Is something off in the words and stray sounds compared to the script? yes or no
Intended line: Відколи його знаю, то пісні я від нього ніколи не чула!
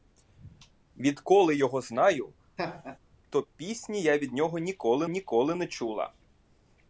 yes